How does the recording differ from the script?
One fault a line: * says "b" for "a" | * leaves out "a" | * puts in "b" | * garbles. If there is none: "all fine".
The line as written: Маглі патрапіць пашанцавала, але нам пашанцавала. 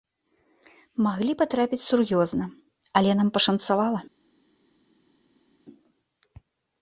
* says "сур'ёзна" for "пашанцавала"